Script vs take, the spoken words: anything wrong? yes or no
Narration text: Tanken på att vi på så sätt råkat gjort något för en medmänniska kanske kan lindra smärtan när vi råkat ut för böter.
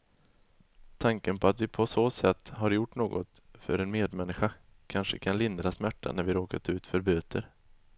yes